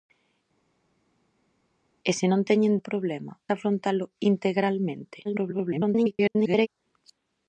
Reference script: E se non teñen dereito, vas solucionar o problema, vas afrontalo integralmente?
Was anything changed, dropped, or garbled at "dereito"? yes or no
yes